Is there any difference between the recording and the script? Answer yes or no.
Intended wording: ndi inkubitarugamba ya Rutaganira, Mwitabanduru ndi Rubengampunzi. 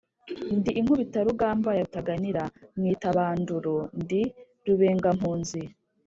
no